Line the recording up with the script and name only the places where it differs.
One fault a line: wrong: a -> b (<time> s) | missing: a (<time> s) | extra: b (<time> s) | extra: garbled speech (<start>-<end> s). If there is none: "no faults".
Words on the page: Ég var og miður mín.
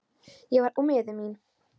no faults